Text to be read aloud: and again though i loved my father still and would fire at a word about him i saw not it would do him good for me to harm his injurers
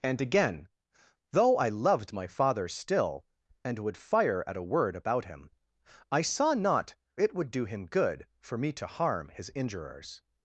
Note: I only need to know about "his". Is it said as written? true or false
true